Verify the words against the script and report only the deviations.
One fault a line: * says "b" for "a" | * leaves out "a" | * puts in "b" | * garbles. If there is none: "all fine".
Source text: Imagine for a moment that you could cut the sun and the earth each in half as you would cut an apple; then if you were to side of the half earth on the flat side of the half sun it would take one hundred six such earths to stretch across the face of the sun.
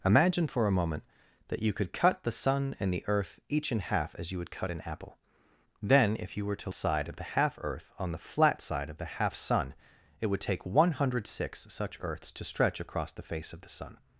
all fine